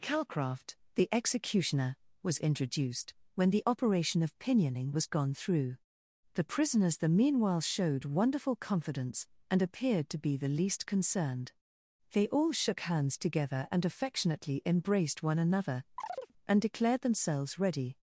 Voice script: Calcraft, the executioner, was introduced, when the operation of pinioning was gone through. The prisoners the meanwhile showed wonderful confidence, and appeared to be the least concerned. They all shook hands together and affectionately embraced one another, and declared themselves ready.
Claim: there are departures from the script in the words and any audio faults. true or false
true